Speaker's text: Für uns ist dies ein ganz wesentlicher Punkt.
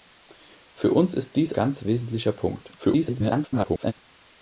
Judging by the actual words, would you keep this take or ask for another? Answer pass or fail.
fail